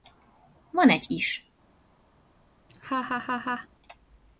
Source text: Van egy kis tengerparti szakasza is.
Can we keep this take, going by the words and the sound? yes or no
no